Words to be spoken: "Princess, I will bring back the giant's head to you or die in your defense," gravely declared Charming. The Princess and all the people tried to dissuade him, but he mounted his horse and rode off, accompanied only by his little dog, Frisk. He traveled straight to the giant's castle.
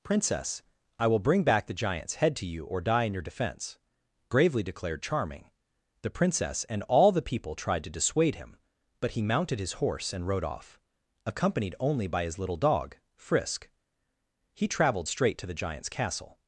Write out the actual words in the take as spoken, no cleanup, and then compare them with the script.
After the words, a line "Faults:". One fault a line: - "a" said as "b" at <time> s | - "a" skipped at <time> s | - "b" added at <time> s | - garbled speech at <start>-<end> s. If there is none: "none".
"Princess, I will bring back the giant's head to you or die in your defense," gravely declared Charming. The Princess and all the people tried to dissuade him, but he mounted his horse and rode off, accompanied only by his little dog, Frisk. He traveled straight to the giant's castle.
Faults:
none